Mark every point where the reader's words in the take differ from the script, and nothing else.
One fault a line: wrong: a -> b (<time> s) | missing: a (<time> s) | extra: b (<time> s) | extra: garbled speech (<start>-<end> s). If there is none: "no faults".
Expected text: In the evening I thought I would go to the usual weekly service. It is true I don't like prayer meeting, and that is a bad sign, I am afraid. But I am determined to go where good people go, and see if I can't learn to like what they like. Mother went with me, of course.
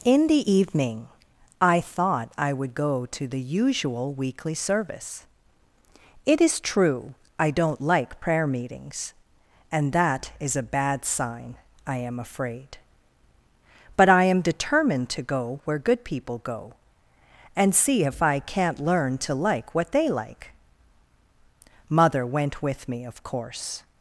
wrong: meeting -> meetings (8.4 s)